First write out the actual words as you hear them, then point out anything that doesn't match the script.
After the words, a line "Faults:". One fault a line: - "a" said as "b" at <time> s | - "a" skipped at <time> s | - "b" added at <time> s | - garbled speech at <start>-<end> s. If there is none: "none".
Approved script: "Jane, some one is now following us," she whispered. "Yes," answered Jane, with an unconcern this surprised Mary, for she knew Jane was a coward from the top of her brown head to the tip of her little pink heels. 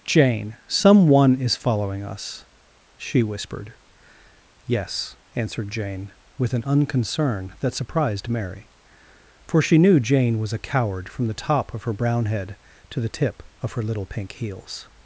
"Jane, some one is following us," she whispered. "Yes," answered Jane, with an unconcern that surprised Mary, for she knew Jane was a coward from the top of her brown head to the tip of her little pink heels.
Faults:
- "now" skipped at 1.6 s
- "this" said as "that" at 7.6 s